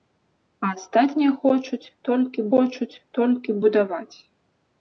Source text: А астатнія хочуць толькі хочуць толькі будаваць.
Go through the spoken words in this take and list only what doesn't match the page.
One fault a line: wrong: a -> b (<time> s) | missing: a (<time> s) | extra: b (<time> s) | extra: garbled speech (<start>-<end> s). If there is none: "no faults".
no faults